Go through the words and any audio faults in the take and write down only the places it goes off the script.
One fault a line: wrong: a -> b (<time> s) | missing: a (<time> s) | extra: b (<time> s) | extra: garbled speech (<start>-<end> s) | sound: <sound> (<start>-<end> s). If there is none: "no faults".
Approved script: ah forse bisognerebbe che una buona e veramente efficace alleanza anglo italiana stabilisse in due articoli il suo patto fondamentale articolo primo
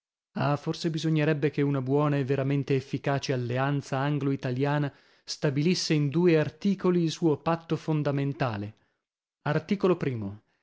no faults